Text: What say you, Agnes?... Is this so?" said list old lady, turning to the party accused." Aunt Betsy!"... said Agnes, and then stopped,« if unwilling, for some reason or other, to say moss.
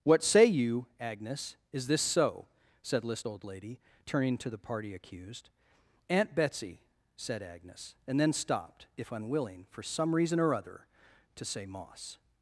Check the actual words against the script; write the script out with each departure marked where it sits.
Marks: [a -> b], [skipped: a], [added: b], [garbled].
What say you, Agnes?... Is this so?" said list old lady, turning to the party accused." Aunt Betsy!"... said Agnes, and then stopped,« if unwilling, for some reason or other, to say moss.